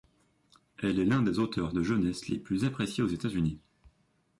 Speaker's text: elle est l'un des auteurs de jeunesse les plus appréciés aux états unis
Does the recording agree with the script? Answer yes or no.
yes